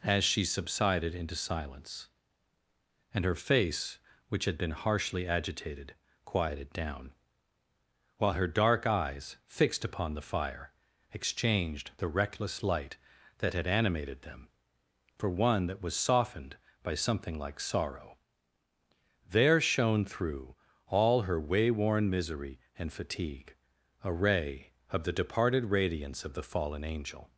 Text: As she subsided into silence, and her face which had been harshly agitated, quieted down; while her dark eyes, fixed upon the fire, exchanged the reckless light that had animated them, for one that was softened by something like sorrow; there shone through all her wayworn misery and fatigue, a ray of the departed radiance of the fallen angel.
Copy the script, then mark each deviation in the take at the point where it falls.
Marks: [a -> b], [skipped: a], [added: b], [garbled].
As she subsided into silence, and her face which had been harshly agitated, quieted down; while her dark eyes, fixed upon the fire, exchanged the reckless light that had animated them, for one that was softened by something like sorrow; there shone through all her wayworn misery and fatigue, a ray of the departed radiance of the fallen angel.